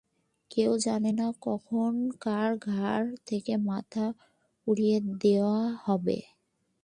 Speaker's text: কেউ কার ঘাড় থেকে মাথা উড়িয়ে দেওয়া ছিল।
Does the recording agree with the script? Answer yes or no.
no